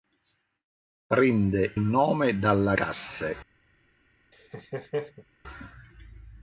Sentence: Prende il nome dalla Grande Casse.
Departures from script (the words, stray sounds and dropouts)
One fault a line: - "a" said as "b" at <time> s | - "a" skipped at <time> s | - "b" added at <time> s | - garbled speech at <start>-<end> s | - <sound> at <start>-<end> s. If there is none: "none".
- "il" skipped at 1.8 s
- "Grande" skipped at 2.7 s
- laugh at 4.3-5.2 s